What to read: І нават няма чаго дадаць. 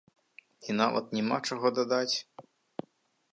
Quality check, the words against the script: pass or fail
pass